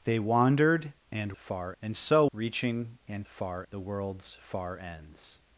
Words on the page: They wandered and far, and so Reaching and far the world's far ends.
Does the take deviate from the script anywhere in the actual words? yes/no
no